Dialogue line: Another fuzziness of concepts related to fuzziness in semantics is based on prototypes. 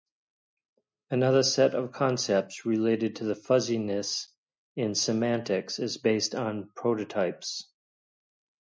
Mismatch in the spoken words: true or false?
true